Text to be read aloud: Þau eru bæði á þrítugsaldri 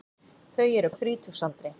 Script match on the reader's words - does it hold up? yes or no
no